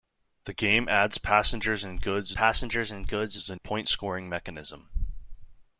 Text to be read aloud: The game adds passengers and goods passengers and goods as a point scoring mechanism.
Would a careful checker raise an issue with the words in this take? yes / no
no